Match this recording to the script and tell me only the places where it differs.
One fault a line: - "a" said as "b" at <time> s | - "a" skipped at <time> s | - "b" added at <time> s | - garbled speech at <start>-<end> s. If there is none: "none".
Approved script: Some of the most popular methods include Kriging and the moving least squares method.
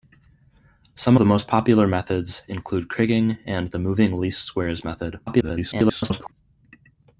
- "of" skipped at 1.1 s
- garbled speech at 5.3-6.3 s